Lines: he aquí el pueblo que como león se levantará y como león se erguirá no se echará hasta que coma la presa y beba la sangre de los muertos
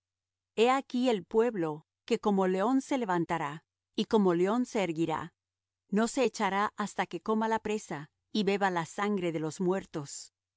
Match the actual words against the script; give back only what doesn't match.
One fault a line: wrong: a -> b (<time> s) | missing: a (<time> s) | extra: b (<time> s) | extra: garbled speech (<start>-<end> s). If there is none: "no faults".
no faults